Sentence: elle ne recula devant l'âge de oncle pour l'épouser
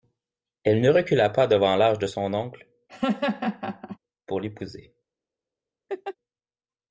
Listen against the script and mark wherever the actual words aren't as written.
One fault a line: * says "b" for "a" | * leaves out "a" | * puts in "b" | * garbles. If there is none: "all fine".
* puts in "pas"
* puts in "son"